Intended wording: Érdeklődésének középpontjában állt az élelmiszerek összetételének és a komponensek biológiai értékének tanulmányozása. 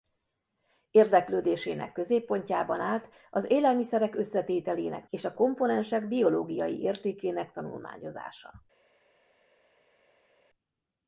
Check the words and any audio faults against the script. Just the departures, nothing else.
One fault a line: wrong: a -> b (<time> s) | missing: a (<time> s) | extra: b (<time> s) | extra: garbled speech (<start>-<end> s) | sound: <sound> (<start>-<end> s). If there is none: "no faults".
no faults